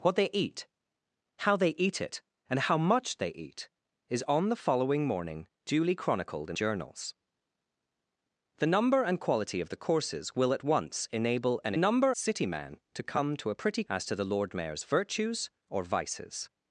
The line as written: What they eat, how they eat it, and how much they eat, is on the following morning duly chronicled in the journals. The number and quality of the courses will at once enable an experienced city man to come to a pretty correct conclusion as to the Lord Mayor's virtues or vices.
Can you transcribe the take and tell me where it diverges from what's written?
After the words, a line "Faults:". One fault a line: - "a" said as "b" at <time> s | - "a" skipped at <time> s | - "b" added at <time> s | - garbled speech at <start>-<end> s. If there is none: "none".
What they eat, how they eat it, and how much they eat, is on the following morning duly chronicled in journals. The number and quality of the courses will at once enable an number city man to come to a pretty as to the Lord Mayor's virtues or vices.
Faults:
- "the" skipped at 6.6 s
- "experienced" said as "number" at 11.8 s
- "correct conclusion" skipped at 13.8 s